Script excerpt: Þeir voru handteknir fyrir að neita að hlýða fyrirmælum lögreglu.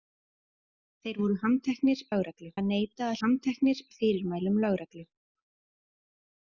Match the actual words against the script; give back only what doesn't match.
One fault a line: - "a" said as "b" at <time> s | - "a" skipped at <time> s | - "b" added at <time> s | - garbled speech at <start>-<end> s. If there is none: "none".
- "fyrir" said as "lögreglu" at 2.1 s
- "hlýða" said as "handteknir" at 3.2 s